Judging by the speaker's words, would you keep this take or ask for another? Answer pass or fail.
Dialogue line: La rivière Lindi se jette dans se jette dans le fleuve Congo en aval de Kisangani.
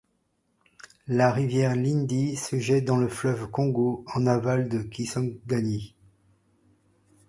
fail